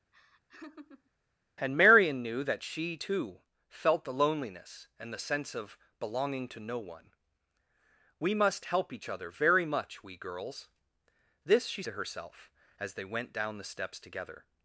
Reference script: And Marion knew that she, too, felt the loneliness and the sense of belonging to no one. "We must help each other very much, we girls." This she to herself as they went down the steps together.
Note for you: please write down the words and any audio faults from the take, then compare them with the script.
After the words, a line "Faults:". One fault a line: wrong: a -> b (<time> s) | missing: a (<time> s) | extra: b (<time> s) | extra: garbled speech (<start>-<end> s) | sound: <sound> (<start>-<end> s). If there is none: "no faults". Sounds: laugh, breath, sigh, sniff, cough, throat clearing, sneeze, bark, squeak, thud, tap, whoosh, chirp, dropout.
And Marion knew that she, too, felt the loneliness and the sense of belonging to no one. "We must help each other very much, we girls." This she to herself as they went down the steps together.
Faults:
sound: laugh (0.1-1.1 s)